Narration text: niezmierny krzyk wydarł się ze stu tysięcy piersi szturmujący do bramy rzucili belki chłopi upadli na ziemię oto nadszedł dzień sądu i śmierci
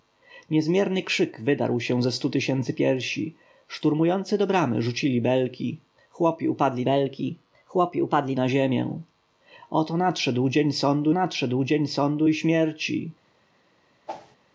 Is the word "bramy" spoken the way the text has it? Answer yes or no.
yes